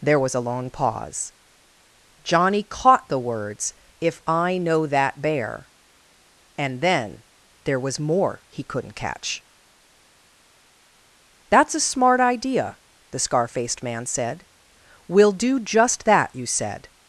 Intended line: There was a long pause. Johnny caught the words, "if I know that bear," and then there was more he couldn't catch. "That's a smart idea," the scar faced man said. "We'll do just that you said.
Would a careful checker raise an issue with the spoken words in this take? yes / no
no